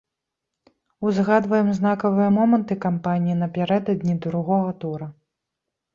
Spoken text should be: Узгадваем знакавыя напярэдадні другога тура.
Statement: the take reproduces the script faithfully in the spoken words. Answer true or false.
false